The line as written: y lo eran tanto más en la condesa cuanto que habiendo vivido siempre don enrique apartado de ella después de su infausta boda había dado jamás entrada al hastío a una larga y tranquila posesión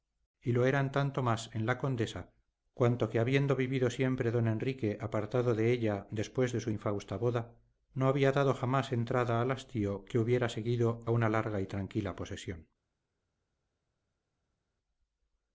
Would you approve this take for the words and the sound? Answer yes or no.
no